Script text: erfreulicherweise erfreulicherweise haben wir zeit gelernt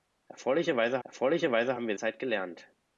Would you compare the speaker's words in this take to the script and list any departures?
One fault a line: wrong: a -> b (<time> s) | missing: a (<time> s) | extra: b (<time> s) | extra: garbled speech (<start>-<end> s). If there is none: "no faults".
no faults